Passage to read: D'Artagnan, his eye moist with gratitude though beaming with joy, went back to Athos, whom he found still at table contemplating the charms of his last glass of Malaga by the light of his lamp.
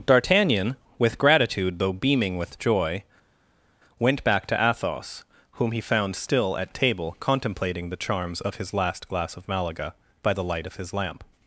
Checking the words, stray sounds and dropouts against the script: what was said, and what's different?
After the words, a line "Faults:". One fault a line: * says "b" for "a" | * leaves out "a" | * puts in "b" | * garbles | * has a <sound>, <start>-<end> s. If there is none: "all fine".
D'Artagnan, with gratitude though beaming with joy, went back to Athos, whom he found still at table contemplating the charms of his last glass of Malaga by the light of his lamp.
Faults:
* leaves out "his eye moist"